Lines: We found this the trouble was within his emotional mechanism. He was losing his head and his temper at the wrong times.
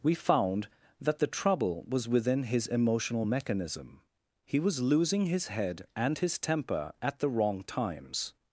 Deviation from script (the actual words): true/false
true